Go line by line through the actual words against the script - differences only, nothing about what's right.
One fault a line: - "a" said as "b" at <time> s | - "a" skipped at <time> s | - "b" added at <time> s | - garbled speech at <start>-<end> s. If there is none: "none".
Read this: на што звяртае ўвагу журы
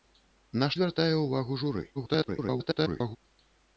- "што" skipped at 0.7 s
- garbled speech at 1.9-3.2 s